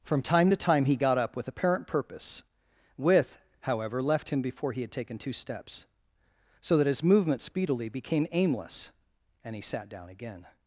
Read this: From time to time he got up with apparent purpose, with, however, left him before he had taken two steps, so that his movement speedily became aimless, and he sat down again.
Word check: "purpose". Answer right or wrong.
right